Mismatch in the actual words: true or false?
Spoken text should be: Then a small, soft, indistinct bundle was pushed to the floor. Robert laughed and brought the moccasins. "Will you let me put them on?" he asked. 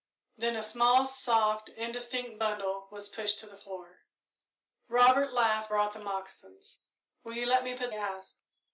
true